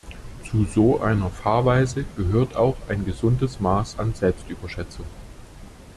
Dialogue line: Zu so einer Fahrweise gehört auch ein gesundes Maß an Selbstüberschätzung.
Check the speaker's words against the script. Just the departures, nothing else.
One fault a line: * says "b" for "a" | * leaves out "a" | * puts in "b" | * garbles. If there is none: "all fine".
all fine